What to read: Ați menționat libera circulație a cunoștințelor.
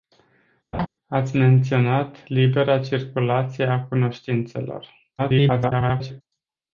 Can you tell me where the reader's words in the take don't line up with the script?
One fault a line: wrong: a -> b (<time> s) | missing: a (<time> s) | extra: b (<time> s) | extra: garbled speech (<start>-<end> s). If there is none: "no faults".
extra: garbled speech (5.2-6.2 s)